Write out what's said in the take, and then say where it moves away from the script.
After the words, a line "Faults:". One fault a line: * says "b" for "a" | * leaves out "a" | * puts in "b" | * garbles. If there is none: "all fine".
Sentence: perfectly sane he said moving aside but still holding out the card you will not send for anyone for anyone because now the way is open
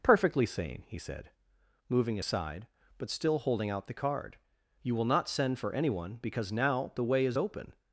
perfectly sane he said moving aside but still holding out the card you will not send for anyone because now the way is open
Faults:
* leaves out "for anyone"